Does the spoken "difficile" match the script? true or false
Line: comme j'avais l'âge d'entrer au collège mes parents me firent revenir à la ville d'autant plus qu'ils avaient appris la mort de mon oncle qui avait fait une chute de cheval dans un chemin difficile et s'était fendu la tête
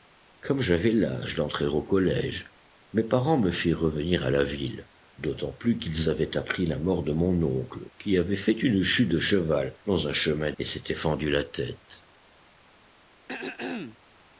false